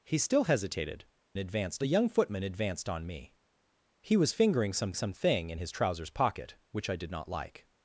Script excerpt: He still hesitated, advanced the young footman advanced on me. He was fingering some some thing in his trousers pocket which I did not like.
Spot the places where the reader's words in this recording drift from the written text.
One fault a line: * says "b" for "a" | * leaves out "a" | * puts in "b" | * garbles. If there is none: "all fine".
all fine